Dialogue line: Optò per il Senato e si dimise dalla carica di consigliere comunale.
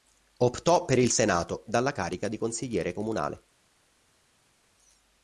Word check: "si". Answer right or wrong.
wrong